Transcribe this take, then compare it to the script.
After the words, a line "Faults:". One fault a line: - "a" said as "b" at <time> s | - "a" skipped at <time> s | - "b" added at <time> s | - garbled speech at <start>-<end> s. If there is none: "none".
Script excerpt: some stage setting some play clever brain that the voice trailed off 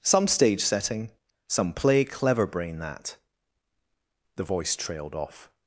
some stage setting some play clever brain that the voice trailed off
Faults:
none